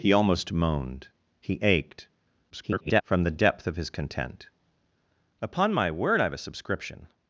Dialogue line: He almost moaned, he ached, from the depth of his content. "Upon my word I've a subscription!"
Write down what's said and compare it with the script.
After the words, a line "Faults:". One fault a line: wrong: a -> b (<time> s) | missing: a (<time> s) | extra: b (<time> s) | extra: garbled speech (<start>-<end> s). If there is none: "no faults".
He almost moaned, he ached, [garbled] from the depth of his content. "Upon my word I've a subscription!"
Faults:
extra: garbled speech (2.5-3.0 s)